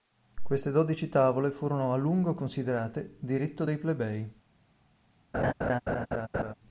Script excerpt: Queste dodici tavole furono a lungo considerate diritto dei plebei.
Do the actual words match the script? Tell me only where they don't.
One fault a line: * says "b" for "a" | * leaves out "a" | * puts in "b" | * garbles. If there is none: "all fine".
all fine